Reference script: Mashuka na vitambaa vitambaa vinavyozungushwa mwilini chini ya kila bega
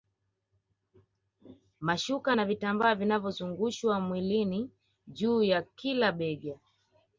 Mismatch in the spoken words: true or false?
true